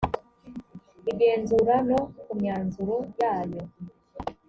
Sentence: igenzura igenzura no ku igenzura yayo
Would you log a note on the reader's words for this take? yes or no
yes